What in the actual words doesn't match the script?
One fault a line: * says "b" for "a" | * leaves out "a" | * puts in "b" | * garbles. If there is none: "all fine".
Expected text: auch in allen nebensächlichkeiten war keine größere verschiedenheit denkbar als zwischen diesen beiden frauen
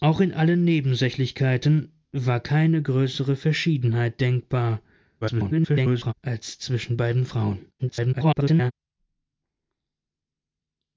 * garbles
* leaves out "diesen"
* garbles